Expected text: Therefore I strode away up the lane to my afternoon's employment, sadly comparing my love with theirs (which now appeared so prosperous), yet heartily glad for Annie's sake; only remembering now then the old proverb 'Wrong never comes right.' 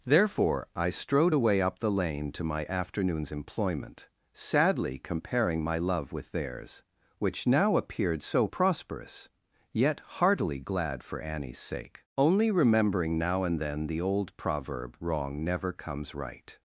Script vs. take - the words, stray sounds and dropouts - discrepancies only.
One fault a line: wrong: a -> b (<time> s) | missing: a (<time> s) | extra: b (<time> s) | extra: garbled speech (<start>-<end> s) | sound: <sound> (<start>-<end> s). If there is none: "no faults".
extra: and (13.4 s)